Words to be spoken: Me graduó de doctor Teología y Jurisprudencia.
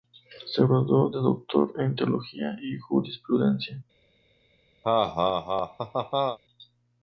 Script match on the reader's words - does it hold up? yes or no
no